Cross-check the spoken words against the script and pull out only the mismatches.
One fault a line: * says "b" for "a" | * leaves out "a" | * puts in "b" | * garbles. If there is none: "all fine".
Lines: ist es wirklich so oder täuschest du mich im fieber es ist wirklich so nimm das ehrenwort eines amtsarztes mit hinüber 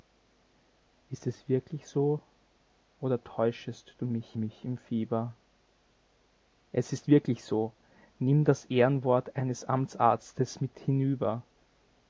* puts in "mich"